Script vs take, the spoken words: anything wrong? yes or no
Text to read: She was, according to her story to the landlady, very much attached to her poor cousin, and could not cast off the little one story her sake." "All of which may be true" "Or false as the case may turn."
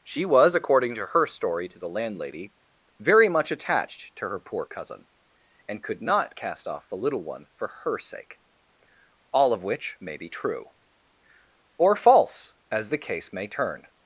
yes